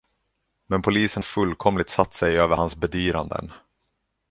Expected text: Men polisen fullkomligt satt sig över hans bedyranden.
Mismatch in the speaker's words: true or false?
false